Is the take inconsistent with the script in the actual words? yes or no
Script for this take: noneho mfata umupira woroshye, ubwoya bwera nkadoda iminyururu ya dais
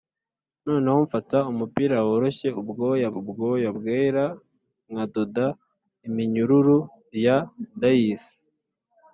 yes